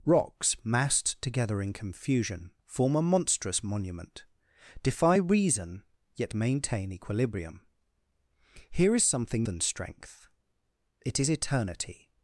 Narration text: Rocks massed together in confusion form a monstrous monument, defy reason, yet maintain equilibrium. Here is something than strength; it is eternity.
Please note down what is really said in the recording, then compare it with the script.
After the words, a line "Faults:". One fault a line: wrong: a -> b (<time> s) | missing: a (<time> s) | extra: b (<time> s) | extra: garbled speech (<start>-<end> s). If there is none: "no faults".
Rocks massed together in confusion form a monstrous monument, defy reason, yet maintain equilibrium. Here is something than strength; it is eternity.
Faults:
no faults